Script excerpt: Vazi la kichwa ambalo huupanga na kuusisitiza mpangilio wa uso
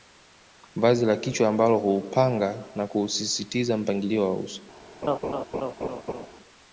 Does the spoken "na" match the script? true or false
true